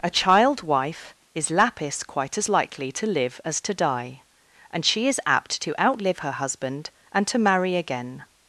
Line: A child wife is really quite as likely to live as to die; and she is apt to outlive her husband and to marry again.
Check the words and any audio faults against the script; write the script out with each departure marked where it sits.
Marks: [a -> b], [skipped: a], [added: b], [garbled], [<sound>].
A child wife is [really -> lapis] quite as likely to live as to die; and she is apt to outlive her husband and to marry again.